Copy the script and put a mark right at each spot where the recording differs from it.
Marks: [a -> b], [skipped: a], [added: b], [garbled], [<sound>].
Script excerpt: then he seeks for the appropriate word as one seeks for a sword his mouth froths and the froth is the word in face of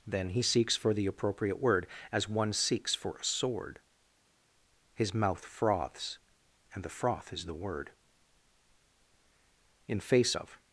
then he seeks for the appropriate word as one seeks for a sword his mouth froths and the froth is the word in face of